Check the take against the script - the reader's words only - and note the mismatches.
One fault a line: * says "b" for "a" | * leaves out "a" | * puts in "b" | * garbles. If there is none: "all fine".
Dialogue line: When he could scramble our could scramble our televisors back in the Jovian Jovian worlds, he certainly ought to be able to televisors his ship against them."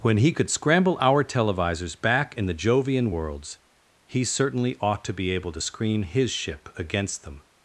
* leaves out "could scramble our"
* leaves out "Jovian"
* says "screen" for "televisors"